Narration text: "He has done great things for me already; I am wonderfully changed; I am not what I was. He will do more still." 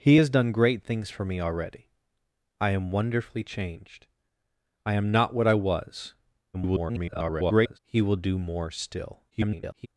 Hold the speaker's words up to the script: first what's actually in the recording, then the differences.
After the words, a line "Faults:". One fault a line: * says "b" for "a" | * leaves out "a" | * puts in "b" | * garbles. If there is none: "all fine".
"He has done great things for me already; I am wonderfully changed; I am not what I was. [garbled] He will do more still." [garbled]
Faults:
* garbles
* garbles